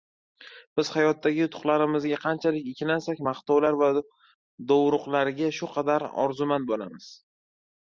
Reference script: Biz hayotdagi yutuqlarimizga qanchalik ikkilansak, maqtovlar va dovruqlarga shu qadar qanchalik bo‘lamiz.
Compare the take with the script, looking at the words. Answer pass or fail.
fail